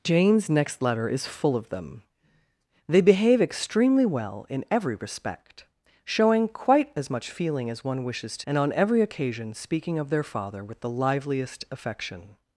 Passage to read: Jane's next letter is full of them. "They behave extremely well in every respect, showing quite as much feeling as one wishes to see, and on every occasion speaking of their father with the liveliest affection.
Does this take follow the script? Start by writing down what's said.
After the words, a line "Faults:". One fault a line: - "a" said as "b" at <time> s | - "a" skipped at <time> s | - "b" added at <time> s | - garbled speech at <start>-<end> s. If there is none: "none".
Jane's next letter is full of them. "They behave extremely well in every respect, showing quite as much feeling as one wishes to and on every occasion speaking of their father with the liveliest affection.
Faults:
- "see" skipped at 8.5 s